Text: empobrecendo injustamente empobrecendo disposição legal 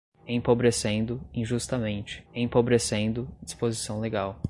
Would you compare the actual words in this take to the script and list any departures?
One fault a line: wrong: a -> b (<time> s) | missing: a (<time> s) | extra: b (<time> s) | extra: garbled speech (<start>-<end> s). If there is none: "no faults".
no faults